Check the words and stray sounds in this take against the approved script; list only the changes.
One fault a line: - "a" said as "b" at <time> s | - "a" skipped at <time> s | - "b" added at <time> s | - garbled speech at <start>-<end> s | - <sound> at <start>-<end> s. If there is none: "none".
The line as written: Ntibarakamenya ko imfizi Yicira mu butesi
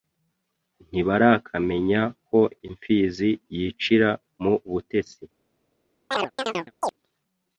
- chirp at 6.1-6.9 s